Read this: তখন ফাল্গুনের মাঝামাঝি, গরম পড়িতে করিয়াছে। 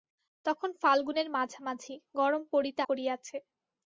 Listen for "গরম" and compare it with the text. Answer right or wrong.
right